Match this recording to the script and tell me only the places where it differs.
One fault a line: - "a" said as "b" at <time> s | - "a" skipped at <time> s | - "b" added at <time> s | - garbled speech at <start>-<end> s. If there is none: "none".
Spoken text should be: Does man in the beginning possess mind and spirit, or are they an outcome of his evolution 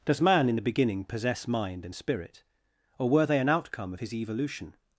- "are" said as "were" at 3.1 s